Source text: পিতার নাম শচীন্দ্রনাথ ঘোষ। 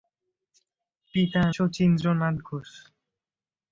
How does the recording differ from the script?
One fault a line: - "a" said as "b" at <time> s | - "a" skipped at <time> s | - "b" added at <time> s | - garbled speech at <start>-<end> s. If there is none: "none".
- "নাম" skipped at 1.5 s